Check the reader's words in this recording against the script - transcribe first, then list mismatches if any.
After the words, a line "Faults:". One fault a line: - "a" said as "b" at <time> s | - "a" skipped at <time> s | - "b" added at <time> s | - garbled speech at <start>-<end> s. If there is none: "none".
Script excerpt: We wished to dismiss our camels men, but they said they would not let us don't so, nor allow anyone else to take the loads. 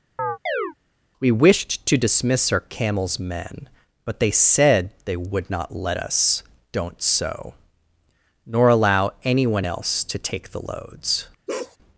We wished to dismiss our camels men, but they said they would not let us don't so, nor allow anyone else to take the loads.
Faults:
none